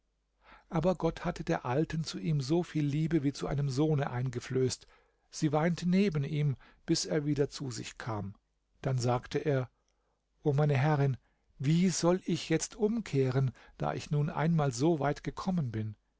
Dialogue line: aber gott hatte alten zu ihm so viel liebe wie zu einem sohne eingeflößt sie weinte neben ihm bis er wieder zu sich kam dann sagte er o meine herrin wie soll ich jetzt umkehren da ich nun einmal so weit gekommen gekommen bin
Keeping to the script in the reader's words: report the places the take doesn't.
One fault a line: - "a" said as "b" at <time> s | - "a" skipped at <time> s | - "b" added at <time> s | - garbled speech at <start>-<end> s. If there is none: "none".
- "der" added at 1.4 s
- "gekommen" skipped at 15.7 s